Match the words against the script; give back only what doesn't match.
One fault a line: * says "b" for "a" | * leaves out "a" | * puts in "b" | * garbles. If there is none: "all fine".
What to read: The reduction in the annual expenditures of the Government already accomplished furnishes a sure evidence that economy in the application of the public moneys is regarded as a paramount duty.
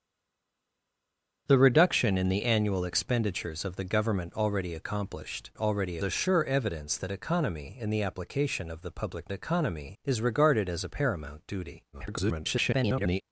* says "already" for "furnishes"
* says "economy" for "moneys"
* garbles